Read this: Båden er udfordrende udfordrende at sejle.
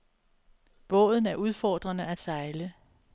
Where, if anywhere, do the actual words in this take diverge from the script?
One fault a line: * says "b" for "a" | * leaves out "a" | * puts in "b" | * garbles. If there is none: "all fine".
* leaves out "udfordrende"